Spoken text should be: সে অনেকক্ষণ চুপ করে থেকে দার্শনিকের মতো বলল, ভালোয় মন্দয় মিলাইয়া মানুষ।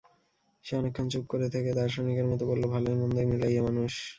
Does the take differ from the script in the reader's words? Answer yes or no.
no